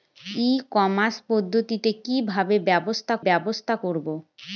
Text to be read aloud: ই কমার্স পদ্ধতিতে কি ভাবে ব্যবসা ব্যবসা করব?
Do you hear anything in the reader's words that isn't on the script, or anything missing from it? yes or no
no